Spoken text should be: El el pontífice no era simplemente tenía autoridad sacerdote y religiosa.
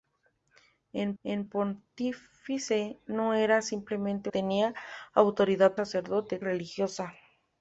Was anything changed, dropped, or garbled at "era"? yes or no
no